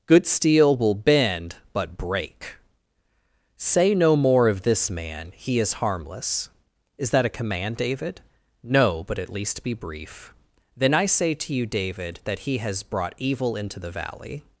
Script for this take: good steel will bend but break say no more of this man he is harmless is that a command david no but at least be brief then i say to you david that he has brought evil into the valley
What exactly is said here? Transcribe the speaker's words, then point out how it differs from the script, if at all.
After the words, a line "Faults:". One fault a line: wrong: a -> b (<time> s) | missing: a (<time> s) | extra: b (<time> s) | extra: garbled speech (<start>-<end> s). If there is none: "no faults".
good steel will bend but break say no more of this man he is harmless is that a command david no but at least be brief then i say to you david that he has brought evil into the valley
Faults:
no faults